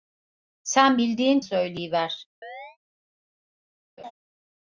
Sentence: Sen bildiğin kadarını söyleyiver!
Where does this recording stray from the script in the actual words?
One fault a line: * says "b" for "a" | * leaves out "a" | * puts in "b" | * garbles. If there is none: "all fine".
* leaves out "kadarını"